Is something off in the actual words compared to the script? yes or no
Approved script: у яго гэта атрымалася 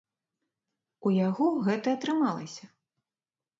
no